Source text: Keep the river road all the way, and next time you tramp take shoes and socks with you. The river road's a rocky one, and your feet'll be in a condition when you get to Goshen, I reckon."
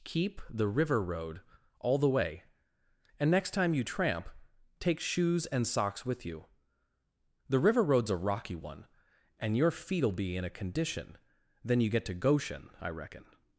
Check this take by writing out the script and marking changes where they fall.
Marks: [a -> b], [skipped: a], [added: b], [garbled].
Keep the river road all the way, and next time you tramp take shoes and socks with you. The river road's a rocky one, and your feet'll be in a condition [when -> then] you get to Goshen, I reckon."